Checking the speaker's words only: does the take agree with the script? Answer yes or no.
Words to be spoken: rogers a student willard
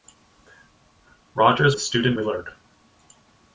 yes